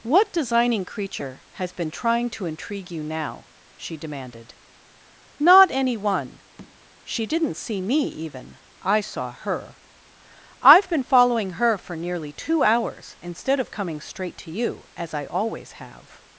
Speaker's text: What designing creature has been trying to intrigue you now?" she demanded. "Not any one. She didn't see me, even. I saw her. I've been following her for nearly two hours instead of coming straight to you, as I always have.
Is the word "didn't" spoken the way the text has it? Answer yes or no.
yes